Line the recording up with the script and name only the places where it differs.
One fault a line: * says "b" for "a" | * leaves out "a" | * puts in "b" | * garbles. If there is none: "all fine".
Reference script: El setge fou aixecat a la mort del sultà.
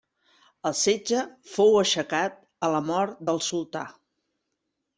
all fine